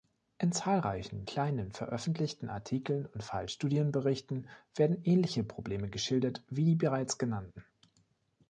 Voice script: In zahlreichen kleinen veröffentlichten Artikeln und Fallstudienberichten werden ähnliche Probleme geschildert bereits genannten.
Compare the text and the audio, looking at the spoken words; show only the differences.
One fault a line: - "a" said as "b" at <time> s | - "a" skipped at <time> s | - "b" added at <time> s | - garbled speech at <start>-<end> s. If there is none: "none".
- "wie die" added at 6.5 s